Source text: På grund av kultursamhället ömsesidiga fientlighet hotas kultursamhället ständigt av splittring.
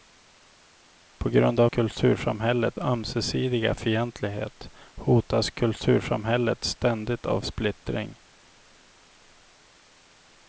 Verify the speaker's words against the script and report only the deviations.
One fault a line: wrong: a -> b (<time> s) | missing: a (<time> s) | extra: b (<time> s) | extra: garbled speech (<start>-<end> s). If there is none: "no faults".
no faults